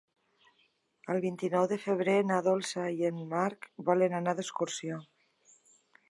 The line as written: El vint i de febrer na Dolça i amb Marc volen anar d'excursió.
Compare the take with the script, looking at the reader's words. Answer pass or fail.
fail